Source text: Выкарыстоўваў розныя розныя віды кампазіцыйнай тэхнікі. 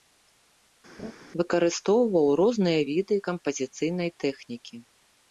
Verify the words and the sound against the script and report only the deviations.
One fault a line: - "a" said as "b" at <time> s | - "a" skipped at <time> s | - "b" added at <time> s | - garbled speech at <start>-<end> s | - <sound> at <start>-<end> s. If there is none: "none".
- laugh at 1.0-1.1 s
- "розныя" skipped at 2.8 s